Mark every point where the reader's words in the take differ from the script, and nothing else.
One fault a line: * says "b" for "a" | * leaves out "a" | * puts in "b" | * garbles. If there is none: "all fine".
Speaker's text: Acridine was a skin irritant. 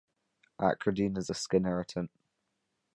* says "is" for "was"